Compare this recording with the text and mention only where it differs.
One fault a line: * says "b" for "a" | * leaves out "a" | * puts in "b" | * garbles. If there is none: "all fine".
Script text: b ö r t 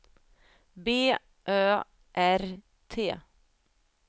all fine